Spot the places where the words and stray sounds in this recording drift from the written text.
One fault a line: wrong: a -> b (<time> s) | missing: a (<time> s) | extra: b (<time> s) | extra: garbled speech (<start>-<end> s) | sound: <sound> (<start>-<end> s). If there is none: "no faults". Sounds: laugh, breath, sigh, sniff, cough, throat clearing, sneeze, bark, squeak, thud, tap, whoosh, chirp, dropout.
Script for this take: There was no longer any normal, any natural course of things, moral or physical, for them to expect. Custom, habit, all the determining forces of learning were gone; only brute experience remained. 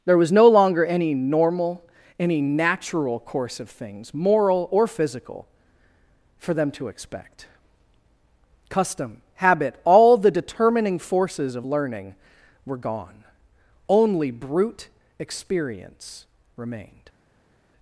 no faults